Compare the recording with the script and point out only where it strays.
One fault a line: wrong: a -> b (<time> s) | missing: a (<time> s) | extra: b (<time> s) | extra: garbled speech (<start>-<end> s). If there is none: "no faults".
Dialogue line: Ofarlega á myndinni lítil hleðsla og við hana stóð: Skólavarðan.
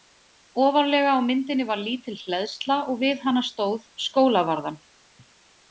extra: var (1.7 s)